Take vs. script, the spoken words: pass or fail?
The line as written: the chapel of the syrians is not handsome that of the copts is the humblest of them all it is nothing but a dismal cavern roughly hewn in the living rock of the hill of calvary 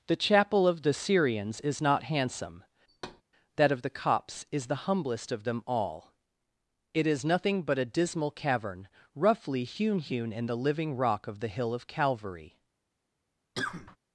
fail